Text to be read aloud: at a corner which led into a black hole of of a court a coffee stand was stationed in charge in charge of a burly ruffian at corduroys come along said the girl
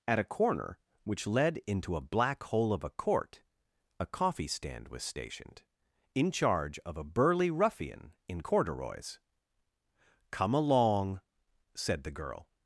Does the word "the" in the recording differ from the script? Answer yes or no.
no